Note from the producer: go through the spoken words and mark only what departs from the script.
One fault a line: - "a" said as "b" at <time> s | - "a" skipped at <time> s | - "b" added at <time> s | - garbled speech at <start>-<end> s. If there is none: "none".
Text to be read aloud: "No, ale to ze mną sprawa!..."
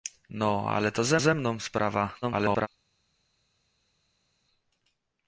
- "ze" added at 1.2 s
- garbled speech at 2.2-2.7 s